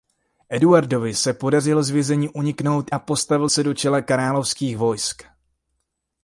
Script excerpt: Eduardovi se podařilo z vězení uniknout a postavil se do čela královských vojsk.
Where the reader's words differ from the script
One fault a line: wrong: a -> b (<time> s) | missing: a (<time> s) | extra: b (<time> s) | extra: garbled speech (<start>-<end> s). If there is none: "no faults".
no faults